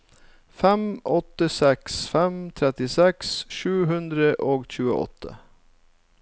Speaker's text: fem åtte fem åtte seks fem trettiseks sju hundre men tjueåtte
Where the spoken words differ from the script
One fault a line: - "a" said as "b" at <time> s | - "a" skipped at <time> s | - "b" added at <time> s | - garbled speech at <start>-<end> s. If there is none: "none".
- "fem åtte" skipped at 1.5 s
- "men" said as "og" at 4.5 s